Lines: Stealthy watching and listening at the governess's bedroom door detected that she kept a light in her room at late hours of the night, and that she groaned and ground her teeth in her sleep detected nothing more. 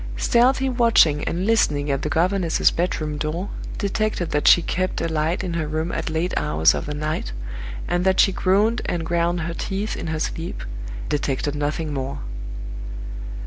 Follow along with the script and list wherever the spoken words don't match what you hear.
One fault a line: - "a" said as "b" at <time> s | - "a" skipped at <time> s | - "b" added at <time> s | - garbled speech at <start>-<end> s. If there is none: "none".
none